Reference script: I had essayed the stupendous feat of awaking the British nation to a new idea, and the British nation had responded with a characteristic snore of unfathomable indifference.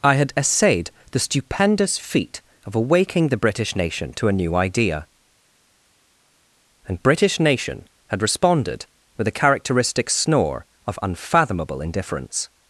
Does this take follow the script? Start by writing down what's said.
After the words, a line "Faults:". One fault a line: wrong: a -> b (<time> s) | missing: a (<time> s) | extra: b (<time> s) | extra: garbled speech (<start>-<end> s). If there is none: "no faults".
I had essayed the stupendous feat of awaking the British nation to a new idea, and British nation had responded with a characteristic snore of unfathomable indifference.
Faults:
missing: the (7.0 s)